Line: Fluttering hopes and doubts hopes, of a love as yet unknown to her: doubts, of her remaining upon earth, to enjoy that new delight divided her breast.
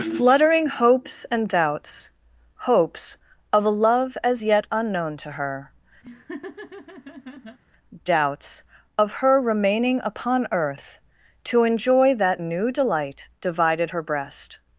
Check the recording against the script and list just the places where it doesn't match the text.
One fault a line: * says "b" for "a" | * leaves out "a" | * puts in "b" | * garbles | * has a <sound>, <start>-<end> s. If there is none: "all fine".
* has a laugh, 6.0-7.6 s